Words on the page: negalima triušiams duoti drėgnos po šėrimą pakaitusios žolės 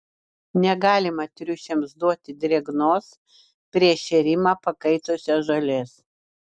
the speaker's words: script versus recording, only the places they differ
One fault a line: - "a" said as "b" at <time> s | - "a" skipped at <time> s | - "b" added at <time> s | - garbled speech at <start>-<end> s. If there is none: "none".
- "po" said as "prieš" at 3.8 s